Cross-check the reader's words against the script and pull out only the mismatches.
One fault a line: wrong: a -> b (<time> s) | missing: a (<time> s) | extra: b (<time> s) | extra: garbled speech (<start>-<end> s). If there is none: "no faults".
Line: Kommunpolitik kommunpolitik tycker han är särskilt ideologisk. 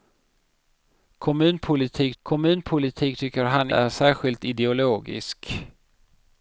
no faults